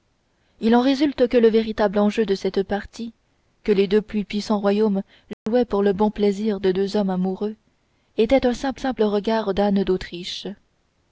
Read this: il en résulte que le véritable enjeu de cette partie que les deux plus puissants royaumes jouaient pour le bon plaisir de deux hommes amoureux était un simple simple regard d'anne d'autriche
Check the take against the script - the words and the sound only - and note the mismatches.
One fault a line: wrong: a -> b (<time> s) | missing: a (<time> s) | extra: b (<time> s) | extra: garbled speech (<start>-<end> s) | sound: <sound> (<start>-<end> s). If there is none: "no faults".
sound: dropout (5.3-5.5 s)